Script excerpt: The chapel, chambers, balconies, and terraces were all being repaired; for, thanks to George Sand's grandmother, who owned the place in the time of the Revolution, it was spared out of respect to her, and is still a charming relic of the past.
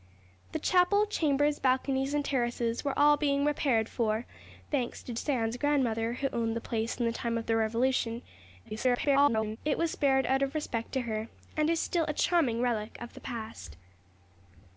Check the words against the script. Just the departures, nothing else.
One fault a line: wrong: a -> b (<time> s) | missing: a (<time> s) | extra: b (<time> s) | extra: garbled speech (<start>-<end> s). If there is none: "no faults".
missing: George (5.1 s)
extra: garbled speech (8.7-9.6 s)